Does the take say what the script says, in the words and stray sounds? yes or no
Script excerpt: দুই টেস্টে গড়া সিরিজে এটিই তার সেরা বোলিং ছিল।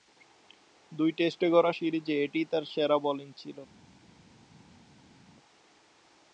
yes